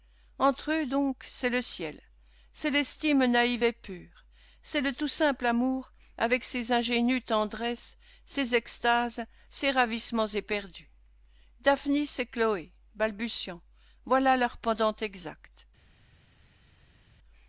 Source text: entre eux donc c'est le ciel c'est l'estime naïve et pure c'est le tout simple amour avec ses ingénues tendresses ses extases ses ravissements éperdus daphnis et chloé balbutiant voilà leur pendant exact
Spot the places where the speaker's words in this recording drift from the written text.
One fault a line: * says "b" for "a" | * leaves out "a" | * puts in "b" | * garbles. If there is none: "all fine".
all fine